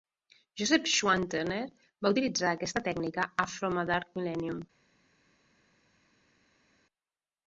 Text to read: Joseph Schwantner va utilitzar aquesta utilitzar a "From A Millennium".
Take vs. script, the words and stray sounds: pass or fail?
fail